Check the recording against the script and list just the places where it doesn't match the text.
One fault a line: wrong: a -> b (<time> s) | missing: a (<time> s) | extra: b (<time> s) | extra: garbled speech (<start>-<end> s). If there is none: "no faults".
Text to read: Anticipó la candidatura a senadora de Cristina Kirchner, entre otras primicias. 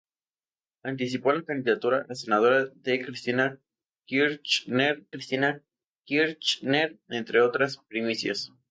extra: Cristina Kirchner (5.1 s)